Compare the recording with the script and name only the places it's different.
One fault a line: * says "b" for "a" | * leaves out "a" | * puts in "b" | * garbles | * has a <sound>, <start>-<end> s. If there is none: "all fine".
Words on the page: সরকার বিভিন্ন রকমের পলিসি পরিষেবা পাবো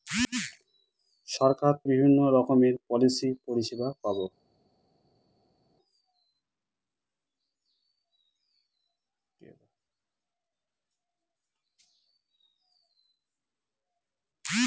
all fine